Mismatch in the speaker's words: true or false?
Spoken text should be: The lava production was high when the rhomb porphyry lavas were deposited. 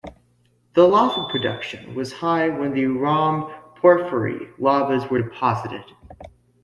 false